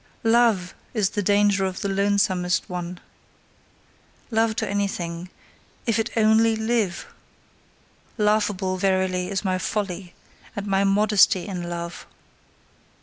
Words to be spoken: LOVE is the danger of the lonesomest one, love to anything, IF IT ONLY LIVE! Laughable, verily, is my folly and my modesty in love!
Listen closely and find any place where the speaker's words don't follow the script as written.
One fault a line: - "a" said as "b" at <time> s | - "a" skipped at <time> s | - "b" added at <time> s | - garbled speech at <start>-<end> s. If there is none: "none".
none